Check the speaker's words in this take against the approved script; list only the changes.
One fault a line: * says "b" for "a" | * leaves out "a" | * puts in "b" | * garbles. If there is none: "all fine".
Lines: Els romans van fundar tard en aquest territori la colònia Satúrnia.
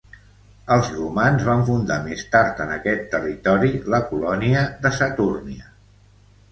* puts in "més"
* puts in "de"